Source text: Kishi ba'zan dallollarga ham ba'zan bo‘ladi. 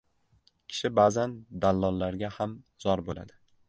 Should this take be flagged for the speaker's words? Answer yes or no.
yes